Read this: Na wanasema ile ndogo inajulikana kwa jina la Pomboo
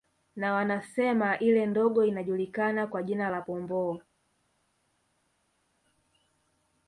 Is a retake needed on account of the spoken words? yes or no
no